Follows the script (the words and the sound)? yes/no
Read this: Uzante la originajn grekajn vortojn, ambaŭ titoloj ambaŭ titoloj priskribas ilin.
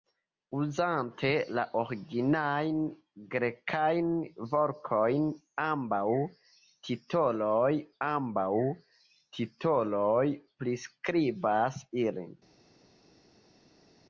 yes